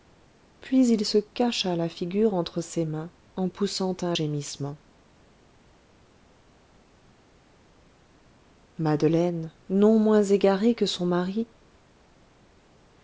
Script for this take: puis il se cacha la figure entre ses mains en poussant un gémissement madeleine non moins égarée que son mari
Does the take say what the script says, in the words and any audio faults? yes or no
yes